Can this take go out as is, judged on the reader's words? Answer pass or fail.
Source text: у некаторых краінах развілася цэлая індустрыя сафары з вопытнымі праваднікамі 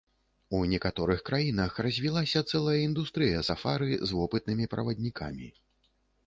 pass